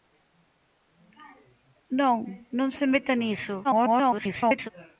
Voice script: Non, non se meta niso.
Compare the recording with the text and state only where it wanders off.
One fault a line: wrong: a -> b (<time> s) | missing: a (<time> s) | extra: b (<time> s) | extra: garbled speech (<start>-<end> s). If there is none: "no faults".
extra: garbled speech (3.6-4.7 s)